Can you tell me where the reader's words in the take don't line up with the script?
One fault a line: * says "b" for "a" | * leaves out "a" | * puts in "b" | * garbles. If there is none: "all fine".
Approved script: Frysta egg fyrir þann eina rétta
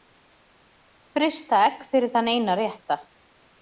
all fine